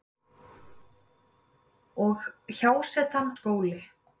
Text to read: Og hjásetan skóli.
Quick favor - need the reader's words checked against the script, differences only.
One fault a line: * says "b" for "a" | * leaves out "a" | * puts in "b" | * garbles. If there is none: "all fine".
all fine